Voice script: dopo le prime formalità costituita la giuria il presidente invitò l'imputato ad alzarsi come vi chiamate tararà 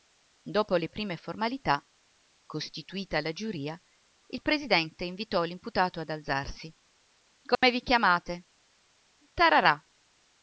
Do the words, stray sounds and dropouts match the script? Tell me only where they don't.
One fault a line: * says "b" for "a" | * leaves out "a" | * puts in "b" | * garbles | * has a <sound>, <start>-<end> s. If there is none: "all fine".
* has a dropout, 7.5-7.6 s